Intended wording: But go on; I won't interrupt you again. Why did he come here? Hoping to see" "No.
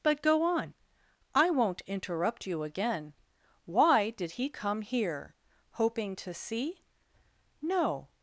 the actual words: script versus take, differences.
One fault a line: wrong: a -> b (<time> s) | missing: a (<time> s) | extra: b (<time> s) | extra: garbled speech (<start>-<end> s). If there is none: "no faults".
no faults